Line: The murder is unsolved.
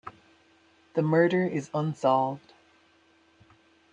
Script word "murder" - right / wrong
right